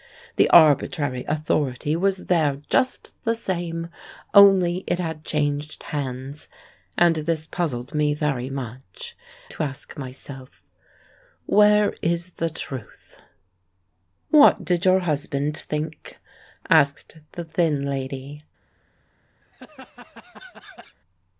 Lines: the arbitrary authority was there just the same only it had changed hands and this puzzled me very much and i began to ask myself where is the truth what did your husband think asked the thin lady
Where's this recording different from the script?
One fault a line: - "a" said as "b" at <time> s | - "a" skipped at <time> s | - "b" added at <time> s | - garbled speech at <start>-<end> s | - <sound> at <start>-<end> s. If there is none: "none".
- "and i began" skipped at 9.2 s
- laugh at 19.4-21.0 s